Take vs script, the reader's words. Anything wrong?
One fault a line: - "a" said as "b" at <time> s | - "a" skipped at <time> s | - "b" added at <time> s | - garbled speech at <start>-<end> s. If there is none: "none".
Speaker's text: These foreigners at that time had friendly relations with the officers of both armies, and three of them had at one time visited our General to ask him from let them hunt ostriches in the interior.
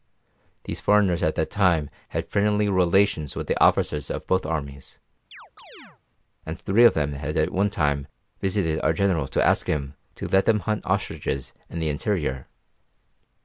- "from" said as "to" at 10.1 s